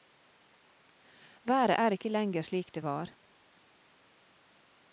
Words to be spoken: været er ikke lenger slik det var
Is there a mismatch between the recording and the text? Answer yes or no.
no